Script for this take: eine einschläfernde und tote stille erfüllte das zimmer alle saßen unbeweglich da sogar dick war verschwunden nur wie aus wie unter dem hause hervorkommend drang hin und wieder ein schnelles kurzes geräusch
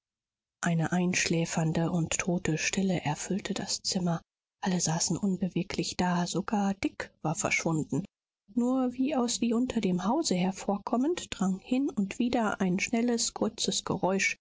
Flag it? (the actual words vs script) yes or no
no